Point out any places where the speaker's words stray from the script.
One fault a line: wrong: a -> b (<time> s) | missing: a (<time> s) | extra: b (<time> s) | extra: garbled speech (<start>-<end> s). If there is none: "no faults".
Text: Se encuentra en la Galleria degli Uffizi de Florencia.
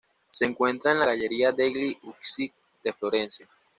no faults